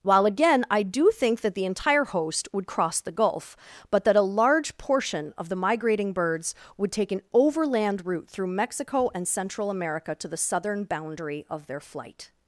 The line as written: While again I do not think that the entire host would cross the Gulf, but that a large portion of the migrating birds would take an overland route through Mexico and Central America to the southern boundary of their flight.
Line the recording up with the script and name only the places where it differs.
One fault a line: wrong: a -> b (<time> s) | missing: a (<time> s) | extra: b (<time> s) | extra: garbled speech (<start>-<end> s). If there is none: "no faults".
missing: not (1.1 s)